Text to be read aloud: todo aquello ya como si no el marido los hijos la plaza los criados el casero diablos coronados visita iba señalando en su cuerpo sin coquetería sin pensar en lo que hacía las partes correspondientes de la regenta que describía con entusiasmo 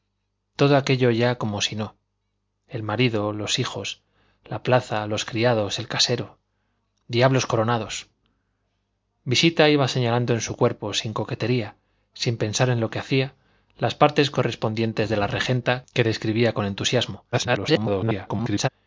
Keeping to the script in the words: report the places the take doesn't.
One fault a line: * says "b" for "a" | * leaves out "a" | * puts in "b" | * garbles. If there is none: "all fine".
* garbles